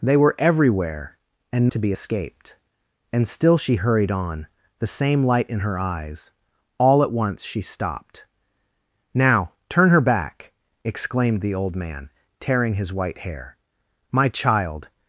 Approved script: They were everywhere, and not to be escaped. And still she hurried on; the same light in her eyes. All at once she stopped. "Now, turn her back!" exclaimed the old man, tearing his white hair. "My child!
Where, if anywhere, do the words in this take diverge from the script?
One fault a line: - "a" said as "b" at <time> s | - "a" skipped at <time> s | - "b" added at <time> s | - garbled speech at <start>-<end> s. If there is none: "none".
- "not" skipped at 1.7 s